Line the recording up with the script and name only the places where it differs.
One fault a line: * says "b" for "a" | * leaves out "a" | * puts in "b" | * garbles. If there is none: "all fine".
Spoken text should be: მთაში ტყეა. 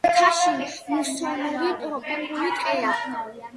* puts in "მუსონური ტროპიკული"